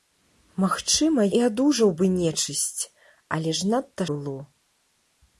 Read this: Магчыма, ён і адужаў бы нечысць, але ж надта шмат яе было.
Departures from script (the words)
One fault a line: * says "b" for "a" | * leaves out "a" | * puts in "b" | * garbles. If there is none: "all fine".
* leaves out "ён"
* leaves out "шмат яе"